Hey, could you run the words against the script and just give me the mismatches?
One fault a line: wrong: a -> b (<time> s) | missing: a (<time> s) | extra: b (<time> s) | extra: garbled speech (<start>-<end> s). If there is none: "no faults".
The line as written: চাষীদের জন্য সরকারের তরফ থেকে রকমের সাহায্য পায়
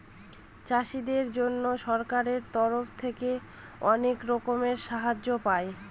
extra: অনেক (3.9 s)